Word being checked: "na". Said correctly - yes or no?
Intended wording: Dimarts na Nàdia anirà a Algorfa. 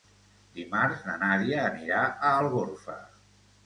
yes